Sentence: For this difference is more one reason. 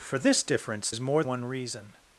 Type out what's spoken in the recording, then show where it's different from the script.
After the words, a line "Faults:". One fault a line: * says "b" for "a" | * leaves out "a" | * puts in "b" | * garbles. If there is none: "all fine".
For this difference is more one reason.
Faults:
all fine